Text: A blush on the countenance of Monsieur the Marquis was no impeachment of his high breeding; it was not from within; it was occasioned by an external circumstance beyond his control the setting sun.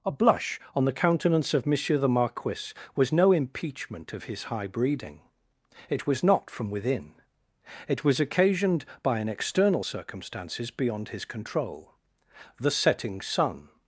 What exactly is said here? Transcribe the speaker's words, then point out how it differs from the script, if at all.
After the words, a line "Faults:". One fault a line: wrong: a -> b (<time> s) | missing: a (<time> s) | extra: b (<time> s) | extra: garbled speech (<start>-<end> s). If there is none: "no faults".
A blush on the countenance of Monsieur the Marquis was no impeachment of his high breeding; it was not from within; it was occasioned by an external circumstances beyond his control the setting sun.
Faults:
wrong: circumstance -> circumstances (9.8 s)